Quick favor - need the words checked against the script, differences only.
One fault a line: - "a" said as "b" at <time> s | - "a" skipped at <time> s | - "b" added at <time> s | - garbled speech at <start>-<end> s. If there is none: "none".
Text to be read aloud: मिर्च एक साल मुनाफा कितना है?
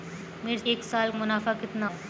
none